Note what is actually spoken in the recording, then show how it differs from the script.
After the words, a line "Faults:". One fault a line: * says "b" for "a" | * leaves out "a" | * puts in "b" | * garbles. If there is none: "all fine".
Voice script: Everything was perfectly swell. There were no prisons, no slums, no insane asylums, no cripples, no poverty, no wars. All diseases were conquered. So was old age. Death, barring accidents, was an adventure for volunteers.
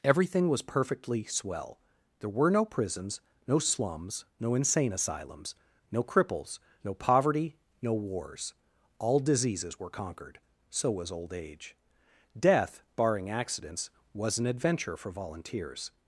Everything was perfectly swell. There were no prisons, no slums, no insane asylums, no cripples, no poverty, no wars. All diseases were conquered. So was old age. Death, barring accidents, was an adventure for volunteers.
Faults:
all fine